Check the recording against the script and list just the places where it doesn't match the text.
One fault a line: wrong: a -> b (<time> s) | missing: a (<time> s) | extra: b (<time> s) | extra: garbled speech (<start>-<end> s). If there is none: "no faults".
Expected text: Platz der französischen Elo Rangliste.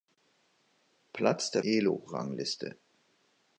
missing: französischen (1.6 s)